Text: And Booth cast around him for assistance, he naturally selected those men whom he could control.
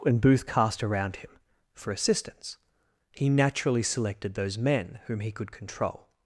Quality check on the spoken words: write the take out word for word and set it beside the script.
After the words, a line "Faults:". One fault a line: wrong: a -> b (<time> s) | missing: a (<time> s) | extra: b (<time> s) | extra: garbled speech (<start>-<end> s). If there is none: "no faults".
And Booth cast around him for assistance, he naturally selected those men whom he could control.
Faults:
no faults